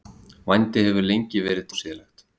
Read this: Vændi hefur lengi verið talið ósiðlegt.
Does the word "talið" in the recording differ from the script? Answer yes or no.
yes